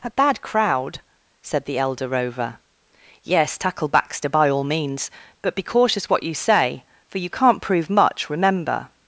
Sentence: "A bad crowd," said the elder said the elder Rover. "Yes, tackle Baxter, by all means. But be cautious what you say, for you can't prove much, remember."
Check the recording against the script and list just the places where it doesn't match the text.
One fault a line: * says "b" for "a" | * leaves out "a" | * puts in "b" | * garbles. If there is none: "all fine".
* leaves out "said the elder"